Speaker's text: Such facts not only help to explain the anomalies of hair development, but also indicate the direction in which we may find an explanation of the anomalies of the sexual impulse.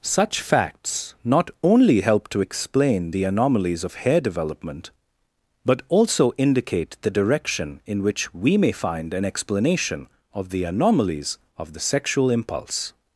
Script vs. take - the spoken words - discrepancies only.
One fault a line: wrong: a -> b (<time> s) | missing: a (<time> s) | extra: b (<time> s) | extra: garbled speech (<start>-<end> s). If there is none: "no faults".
no faults